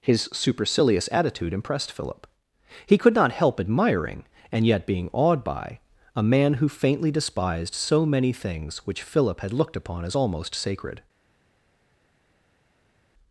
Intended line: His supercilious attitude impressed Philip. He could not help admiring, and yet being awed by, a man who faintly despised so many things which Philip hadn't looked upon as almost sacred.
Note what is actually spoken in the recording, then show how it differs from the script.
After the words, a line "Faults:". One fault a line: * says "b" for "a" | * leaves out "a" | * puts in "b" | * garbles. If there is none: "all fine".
His supercilious attitude impressed Philip. He could not help admiring, and yet being awed by, a man who faintly despised so many things which Philip had looked upon as almost sacred.
Faults:
* says "had" for "hadn't"